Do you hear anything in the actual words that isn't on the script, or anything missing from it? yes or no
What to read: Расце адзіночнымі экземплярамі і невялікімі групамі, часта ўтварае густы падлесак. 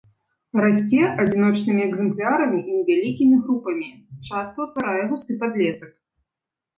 no